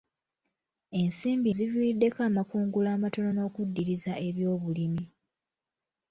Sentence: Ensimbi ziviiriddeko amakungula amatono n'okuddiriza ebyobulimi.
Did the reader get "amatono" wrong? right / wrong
right